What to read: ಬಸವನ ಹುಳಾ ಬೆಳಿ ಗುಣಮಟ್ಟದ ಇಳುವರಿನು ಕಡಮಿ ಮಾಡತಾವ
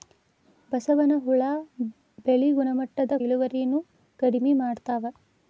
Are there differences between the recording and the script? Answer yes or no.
no